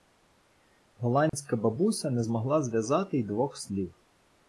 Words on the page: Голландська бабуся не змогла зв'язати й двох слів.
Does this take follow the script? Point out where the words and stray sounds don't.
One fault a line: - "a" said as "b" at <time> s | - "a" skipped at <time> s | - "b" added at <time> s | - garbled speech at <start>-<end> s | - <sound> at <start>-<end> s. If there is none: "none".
- dropout at 1.3-1.3 s